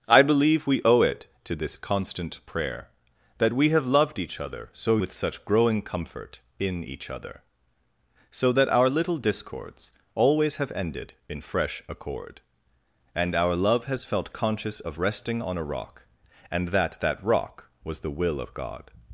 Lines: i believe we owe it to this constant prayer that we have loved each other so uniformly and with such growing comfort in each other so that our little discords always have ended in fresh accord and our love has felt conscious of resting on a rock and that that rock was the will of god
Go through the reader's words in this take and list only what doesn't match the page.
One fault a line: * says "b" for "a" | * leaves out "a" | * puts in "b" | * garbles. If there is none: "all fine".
* leaves out "uniformly and"